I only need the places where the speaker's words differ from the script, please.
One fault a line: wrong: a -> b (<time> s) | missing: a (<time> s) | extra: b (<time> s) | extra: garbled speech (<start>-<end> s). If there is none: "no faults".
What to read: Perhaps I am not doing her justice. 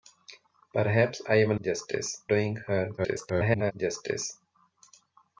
wrong: not -> justice (1.6 s)
extra: garbled speech (3.0-3.7 s)